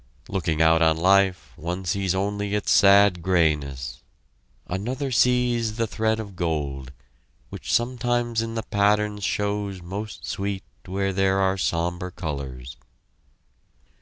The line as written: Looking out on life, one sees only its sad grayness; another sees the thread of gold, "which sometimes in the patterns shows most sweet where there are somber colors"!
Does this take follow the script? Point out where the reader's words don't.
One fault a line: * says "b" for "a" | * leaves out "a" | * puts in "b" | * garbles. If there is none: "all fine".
all fine